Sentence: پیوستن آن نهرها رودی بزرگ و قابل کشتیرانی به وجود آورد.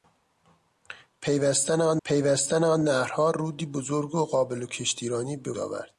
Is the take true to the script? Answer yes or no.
no